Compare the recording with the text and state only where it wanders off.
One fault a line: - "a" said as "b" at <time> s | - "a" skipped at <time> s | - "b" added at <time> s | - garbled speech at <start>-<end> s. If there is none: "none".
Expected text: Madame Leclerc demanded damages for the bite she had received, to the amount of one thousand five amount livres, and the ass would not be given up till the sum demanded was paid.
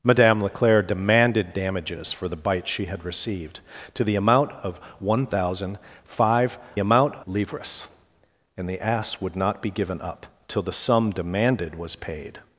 none